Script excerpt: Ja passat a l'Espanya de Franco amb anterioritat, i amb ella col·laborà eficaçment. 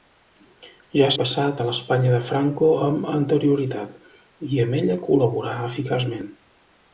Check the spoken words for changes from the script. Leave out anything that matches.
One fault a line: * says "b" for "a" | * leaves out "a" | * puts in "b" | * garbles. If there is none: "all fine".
all fine